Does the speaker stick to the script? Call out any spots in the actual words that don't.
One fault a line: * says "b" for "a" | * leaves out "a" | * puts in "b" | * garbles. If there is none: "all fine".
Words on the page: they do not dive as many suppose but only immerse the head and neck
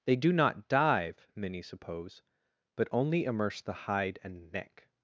* leaves out "as"
* says "hide" for "head"